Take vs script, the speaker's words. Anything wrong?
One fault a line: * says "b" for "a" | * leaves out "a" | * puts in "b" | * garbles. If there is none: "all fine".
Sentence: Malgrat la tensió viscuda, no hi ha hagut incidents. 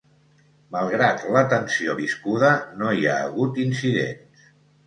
all fine